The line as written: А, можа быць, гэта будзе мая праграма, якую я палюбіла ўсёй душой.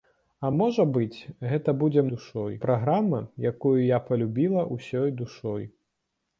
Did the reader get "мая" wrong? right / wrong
wrong